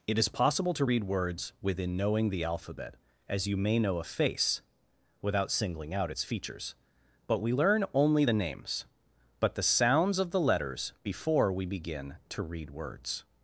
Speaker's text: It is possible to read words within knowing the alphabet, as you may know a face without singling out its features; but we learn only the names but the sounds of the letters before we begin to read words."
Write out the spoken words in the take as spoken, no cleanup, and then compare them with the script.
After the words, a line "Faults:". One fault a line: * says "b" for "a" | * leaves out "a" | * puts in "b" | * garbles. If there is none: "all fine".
It is possible to read words within knowing the alphabet, as you may know a face without singling out its features; but we learn only the names but the sounds of the letters before we begin to read words."
Faults:
all fine